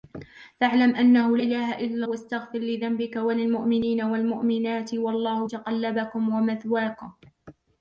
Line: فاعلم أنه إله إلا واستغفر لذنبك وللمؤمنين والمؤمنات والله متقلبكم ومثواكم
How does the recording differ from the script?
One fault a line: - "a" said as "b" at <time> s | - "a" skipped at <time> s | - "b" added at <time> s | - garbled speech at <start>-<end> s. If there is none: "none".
none